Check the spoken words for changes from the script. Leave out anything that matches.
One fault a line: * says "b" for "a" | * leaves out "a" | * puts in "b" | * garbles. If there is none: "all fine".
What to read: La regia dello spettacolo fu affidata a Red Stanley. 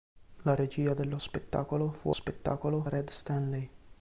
* says "spettacolo" for "affidata"